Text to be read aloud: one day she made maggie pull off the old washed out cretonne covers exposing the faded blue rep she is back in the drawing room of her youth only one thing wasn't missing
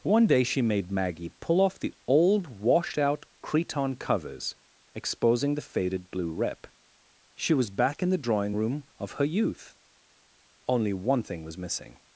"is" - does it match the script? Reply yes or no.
no